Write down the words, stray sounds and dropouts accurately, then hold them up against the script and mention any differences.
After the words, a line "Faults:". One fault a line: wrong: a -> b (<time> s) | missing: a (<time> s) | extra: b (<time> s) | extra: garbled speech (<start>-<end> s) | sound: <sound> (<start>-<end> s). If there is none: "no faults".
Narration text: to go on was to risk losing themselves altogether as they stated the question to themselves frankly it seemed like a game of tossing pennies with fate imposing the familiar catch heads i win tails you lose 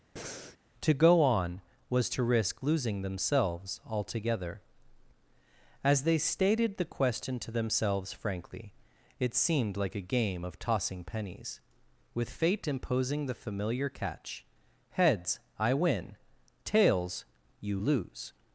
to go on was to risk losing themselves altogether as they stated the question to themselves frankly it seemed like a game of tossing pennies with fate imposing the familiar catch heads i win tails you lose
Faults:
sound: breath (0.2-0.6 s)